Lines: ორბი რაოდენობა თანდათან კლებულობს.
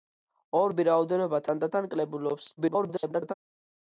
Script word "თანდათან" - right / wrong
right